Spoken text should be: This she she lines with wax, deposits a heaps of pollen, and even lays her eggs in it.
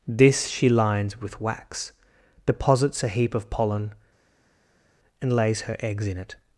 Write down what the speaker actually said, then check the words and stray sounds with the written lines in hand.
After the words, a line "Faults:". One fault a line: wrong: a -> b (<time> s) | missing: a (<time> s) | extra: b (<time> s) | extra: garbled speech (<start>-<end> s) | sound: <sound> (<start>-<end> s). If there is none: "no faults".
This she lines with wax, deposits a heap of pollen, and lays her eggs in it.
Faults:
missing: she (0.7 s)
wrong: heaps -> heap (3.1 s)
missing: even (5.3 s)